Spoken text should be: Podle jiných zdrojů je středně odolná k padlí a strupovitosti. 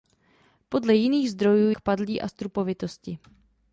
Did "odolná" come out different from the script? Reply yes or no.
yes